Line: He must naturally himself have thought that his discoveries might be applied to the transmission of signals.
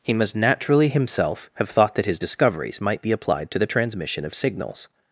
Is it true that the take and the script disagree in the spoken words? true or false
false